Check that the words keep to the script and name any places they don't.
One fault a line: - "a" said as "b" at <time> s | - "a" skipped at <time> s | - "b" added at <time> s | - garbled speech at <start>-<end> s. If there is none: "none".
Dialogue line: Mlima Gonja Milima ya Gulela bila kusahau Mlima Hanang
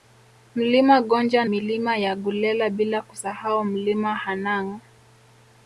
none